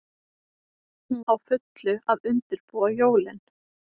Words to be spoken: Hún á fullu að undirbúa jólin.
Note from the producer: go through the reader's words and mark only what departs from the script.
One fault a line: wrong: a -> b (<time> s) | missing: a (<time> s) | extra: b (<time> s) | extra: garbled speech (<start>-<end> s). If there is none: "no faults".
no faults